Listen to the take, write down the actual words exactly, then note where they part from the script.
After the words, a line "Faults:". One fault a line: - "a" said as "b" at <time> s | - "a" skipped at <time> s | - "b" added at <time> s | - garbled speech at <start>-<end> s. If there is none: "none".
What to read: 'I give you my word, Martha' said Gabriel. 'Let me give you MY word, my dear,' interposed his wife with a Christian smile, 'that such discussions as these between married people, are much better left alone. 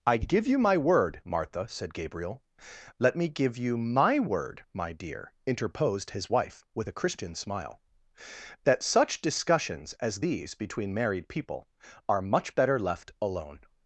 'I give you my word, Martha' said Gabriel. 'Let me give you MY word, my dear,' interposed his wife with a Christian smile, 'that such discussions as these between married people, are much better left alone.
Faults:
none